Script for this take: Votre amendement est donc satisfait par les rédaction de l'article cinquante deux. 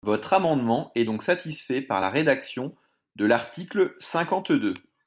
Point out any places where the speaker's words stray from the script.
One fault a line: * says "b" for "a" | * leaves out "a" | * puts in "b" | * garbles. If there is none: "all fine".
* says "la" for "les"